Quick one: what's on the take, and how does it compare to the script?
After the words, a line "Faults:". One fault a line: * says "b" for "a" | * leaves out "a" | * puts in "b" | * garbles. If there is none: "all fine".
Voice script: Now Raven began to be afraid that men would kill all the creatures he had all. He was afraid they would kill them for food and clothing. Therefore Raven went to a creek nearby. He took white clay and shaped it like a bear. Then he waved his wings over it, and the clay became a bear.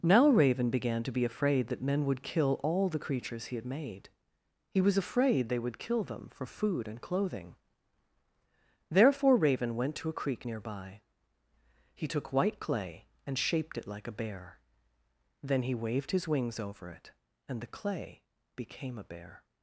Now Raven began to be afraid that men would kill all the creatures he had made. He was afraid they would kill them for food and clothing. Therefore Raven went to a creek nearby. He took white clay and shaped it like a bear. Then he waved his wings over it, and the clay became a bear.
Faults:
* says "made" for "all"